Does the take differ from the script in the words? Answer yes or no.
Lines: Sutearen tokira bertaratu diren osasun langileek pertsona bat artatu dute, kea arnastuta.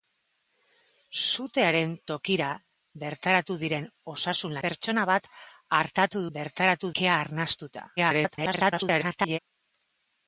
yes